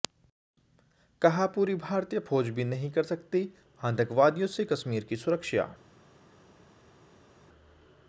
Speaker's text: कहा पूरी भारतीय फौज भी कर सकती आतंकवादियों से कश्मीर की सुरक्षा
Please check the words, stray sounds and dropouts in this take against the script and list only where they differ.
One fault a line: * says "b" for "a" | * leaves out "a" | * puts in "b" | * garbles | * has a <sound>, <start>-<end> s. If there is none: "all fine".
* puts in "नहीं"